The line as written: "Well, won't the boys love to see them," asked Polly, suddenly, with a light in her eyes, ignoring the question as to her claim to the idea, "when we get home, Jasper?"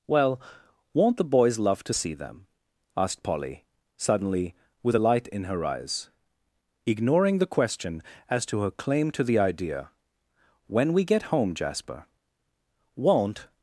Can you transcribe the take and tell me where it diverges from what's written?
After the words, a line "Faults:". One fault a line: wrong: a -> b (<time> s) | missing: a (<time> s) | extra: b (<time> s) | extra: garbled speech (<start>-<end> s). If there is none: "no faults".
"Well, won't the boys love to see them," asked Polly, suddenly, with a light in her eyes, ignoring the question as to her claim to the idea, "when we get home, Jasper?" "Won't
Faults:
extra: Won't (13.0 s)